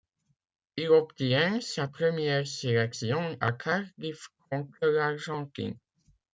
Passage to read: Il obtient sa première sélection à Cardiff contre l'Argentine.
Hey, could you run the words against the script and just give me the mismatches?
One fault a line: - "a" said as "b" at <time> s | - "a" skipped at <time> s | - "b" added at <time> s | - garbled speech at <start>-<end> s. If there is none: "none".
none